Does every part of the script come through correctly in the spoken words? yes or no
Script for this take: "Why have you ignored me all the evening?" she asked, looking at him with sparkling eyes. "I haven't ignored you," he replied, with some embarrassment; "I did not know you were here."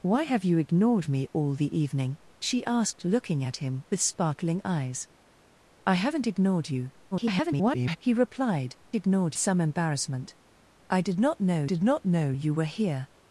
no